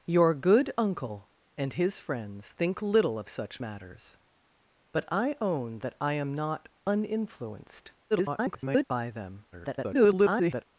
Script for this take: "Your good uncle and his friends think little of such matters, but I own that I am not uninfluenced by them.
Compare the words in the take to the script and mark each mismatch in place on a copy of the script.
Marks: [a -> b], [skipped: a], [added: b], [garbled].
"Your good uncle and his friends think little of such matters, but I own that I am not uninfluenced [garbled] by them. [garbled]